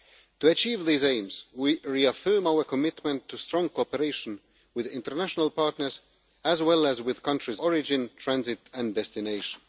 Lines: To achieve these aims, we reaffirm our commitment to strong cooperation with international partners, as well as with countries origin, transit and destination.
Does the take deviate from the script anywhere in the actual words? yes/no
no